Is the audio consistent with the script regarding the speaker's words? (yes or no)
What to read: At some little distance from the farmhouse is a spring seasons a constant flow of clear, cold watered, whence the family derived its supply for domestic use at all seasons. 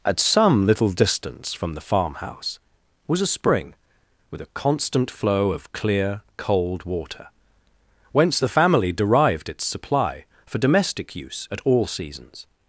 no